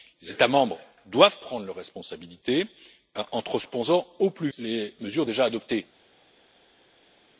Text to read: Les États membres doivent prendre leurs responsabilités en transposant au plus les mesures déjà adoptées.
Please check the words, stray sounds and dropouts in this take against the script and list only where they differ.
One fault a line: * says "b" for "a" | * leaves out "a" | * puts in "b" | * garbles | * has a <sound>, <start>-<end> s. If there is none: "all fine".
all fine